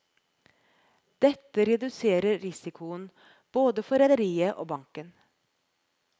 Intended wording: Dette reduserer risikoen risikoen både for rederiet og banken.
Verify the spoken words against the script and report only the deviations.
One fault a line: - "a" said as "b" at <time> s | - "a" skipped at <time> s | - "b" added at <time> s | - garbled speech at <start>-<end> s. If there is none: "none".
- "risikoen" skipped at 3.0 s